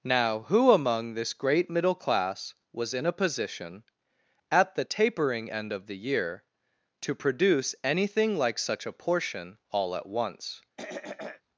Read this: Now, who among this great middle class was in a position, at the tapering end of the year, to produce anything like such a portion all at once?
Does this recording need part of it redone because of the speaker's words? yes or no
no